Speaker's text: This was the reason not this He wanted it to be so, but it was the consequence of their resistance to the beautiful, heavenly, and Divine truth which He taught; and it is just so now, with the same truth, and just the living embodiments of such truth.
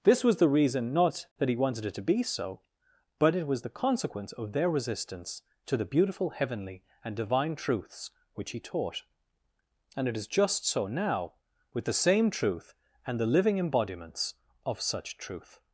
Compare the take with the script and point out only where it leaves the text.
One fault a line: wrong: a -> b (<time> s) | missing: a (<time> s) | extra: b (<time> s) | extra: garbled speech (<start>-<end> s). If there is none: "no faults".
wrong: this -> that (1.4 s)
wrong: truth -> truths (7.5 s)
missing: just (13.2 s)